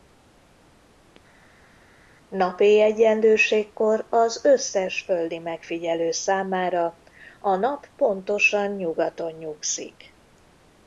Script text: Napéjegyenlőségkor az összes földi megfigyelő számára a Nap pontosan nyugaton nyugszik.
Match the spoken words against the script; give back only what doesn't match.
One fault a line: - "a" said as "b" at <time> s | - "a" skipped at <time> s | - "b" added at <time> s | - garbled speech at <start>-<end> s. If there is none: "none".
none